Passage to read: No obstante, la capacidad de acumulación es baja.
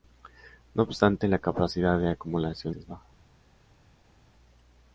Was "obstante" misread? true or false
false